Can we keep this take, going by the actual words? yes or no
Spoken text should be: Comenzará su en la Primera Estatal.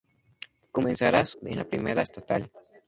yes